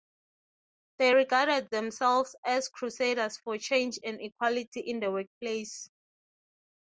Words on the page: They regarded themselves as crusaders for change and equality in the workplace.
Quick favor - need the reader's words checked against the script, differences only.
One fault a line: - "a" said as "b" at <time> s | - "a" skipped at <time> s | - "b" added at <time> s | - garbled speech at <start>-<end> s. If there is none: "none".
none